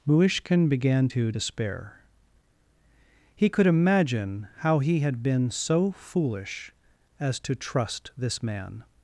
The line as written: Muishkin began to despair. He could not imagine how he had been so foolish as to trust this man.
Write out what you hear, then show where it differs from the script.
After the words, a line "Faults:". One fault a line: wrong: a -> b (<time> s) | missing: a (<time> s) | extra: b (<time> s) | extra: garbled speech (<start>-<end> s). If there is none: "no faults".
Muishkin began to despair. He could imagine how he had been so foolish as to trust this man.
Faults:
missing: not (3.7 s)